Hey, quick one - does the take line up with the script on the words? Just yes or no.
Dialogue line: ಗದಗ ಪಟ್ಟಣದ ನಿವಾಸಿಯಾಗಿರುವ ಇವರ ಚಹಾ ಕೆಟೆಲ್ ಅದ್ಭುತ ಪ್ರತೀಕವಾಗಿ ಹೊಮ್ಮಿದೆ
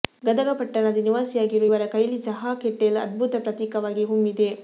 no